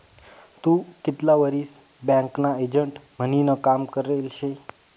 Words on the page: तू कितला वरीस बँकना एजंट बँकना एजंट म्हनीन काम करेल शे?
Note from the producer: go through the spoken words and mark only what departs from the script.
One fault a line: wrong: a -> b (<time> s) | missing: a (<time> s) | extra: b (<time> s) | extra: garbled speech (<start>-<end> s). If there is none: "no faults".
missing: बँकना एजंट (3.0 s)